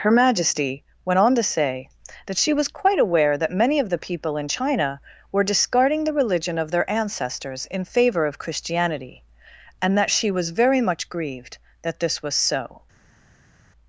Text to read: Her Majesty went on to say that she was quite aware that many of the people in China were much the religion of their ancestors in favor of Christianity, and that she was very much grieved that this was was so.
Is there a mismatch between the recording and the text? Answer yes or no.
yes